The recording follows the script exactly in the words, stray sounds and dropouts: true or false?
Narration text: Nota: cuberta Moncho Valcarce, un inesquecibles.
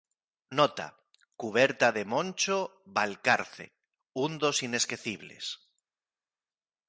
false